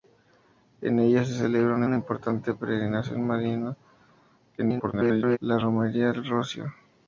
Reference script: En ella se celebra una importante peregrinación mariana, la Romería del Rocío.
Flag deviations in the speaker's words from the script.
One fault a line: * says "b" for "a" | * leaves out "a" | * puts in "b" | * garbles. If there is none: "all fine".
* puts in "una"
* garbles